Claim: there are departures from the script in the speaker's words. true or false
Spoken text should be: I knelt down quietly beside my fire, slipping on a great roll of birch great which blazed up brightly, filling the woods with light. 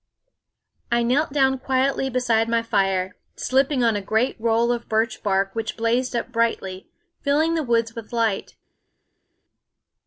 true